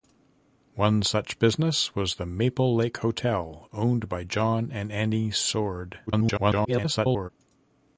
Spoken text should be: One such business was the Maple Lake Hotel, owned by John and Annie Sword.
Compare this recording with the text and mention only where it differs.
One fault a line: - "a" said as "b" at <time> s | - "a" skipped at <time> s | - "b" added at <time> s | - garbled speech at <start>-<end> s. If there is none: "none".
- garbled speech at 6.1-7.3 s